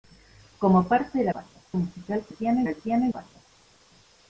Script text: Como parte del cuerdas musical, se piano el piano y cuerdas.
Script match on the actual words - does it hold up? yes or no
yes